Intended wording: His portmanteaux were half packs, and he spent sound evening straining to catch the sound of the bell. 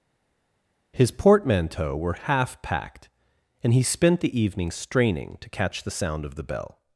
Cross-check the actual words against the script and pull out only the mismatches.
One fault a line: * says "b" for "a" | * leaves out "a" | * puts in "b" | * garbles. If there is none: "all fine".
* says "packed" for "packs"
* says "the" for "sound"